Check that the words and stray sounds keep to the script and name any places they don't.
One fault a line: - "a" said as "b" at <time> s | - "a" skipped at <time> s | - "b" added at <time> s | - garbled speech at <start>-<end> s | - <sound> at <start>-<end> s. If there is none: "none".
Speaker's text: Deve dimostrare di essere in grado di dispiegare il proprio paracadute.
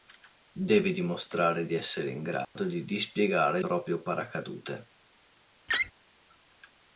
- dropout at 2.4-2.6 s
- "il" skipped at 3.6 s
- laugh at 5.7-5.9 s